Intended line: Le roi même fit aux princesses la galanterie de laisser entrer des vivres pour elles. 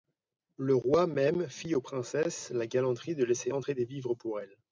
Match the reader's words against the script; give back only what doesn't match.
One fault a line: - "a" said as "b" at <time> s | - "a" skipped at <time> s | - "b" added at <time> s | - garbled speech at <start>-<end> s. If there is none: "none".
none